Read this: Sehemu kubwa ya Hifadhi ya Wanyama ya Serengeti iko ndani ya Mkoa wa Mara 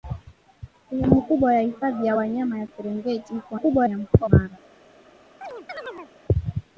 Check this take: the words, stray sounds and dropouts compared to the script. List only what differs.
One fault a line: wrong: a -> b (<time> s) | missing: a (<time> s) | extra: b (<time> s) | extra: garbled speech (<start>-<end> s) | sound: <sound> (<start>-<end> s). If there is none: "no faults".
wrong: ndani -> kubwa (3.5 s)
missing: wa (4.3 s)
sound: chirp (5.4-6.1 s)